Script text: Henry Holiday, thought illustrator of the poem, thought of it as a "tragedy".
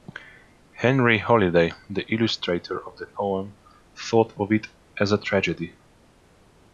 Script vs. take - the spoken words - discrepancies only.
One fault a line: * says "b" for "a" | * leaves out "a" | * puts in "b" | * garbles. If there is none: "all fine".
* says "the" for "thought"